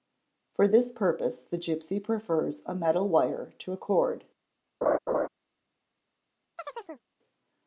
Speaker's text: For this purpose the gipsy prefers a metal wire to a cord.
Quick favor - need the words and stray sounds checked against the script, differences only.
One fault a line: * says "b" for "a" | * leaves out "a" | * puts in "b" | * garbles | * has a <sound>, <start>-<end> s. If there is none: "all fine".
* has a laugh, 4.8-5.3 s
* has a chirp, 6.6-7.1 s